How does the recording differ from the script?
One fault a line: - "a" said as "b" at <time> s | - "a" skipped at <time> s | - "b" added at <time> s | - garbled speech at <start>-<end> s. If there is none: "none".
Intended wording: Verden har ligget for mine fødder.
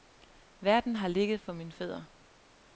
none